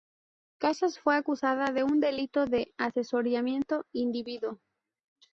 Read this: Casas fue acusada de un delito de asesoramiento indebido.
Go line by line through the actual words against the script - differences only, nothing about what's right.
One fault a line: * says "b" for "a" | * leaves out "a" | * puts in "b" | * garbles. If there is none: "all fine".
all fine